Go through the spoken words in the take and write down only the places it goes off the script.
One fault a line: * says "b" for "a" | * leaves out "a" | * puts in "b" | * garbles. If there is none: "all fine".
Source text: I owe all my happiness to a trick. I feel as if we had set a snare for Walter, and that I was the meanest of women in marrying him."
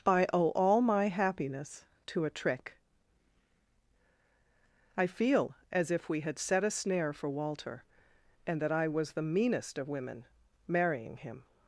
* leaves out "in"